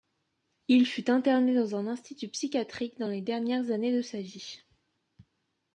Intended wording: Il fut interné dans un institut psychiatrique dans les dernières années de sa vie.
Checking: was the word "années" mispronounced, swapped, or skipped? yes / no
no